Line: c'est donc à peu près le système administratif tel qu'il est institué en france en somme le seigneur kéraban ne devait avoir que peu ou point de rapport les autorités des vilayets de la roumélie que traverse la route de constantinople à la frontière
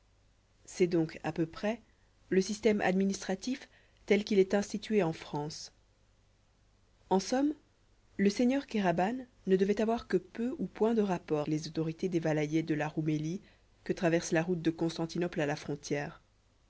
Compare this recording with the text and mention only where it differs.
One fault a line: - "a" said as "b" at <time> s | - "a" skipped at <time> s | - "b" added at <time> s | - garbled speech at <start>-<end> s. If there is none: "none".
none